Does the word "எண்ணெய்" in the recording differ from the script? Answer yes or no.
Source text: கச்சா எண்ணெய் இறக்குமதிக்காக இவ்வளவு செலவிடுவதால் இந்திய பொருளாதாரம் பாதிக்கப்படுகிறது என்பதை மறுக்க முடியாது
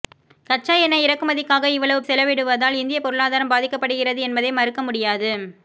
no